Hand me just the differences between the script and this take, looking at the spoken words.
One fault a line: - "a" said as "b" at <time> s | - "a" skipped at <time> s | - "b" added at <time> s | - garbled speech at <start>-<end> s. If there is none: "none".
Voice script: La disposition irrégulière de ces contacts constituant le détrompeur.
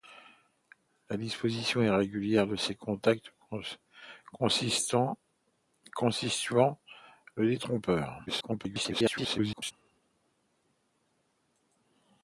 - garbled speech at 8.3-9.7 s